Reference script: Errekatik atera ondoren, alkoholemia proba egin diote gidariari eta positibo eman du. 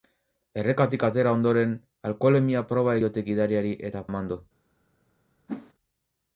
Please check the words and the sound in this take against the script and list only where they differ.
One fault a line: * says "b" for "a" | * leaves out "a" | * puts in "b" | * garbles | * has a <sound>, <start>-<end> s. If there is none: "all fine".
* leaves out "egin"
* leaves out "positibo"
* has a whoosh, 5.5-5.7 s